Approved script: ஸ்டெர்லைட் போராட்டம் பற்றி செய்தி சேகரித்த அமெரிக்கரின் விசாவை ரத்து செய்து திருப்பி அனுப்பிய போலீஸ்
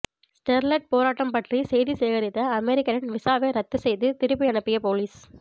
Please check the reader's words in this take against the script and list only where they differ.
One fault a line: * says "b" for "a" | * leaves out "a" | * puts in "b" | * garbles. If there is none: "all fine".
all fine